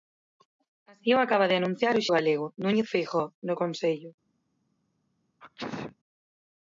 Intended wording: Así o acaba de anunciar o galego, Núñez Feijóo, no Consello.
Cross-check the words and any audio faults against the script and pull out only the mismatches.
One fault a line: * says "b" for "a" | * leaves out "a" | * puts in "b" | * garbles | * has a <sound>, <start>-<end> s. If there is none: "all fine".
* has a sneeze, 5.4-6.0 s